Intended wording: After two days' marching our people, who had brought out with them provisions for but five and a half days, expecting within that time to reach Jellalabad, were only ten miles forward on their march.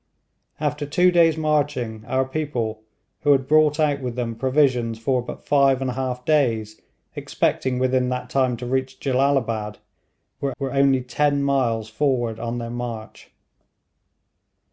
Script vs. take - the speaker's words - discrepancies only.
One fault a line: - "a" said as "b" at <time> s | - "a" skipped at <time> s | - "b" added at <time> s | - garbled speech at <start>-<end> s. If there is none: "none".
- "were" added at 10.6 s